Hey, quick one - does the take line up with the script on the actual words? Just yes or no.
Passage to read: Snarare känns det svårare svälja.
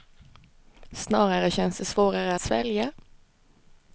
yes